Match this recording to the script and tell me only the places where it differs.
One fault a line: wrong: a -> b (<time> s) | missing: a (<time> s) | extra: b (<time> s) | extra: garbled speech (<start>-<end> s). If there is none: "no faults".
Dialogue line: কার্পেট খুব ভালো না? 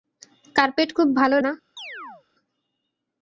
no faults